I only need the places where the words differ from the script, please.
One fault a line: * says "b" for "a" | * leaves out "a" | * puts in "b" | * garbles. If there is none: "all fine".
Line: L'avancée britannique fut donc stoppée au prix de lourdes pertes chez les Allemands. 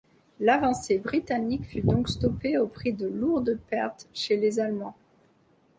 all fine